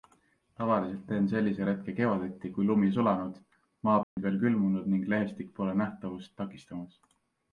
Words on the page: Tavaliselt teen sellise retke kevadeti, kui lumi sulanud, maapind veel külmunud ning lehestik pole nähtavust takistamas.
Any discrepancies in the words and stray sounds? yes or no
yes